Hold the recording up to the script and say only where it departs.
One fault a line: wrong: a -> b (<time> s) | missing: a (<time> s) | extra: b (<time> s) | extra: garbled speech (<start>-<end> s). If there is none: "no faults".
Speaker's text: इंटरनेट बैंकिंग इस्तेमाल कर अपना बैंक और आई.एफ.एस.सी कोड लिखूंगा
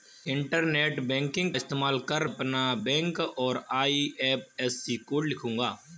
no faults